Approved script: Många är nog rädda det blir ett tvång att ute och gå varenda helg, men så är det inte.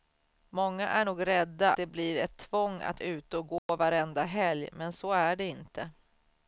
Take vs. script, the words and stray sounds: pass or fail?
fail